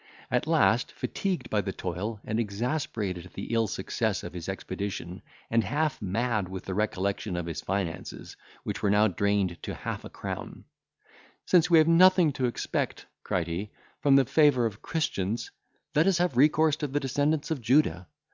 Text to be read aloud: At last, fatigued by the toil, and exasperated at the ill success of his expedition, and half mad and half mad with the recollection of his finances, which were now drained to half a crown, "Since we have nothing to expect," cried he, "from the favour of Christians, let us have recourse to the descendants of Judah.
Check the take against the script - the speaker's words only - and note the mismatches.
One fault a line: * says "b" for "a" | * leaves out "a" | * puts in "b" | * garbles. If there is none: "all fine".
* leaves out "and half mad"